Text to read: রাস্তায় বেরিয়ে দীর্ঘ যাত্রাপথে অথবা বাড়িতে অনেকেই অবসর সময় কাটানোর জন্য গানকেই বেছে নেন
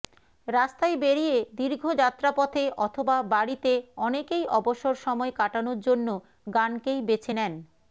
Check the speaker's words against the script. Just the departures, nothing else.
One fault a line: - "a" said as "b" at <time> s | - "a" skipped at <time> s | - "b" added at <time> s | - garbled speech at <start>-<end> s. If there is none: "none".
none